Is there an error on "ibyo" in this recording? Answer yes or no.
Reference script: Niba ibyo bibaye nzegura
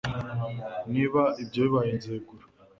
no